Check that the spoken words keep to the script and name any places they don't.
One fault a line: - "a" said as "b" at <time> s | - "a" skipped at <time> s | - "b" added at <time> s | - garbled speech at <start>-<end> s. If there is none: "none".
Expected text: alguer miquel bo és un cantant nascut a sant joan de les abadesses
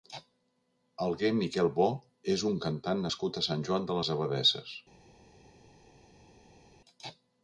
none